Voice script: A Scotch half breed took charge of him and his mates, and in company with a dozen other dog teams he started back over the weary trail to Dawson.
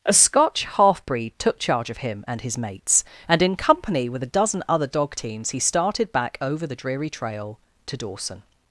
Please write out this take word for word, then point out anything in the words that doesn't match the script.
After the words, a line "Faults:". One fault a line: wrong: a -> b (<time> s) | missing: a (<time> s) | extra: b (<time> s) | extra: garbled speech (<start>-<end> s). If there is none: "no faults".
A Scotch half breed took charge of him and his mates, and in company with a dozen other dog teams he started back over the dreary trail to Dawson.
Faults:
wrong: weary -> dreary (6.7 s)